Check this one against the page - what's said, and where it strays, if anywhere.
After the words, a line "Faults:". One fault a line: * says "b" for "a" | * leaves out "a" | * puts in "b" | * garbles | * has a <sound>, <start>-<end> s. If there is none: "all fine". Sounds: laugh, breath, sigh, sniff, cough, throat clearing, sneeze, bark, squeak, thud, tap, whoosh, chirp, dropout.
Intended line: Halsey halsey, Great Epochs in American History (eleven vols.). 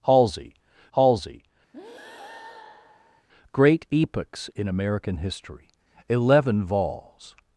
Halsey halsey, Great Epochs in American History (eleven vols.).
Faults:
* has a breath, 1.7-3.3 s